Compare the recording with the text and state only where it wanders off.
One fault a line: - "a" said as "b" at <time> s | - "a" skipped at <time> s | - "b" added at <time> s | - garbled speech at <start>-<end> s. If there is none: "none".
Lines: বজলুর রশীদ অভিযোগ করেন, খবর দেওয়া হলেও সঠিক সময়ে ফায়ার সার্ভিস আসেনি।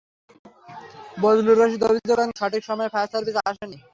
- "খবর দেওয়া হলেও" skipped at 2.3 s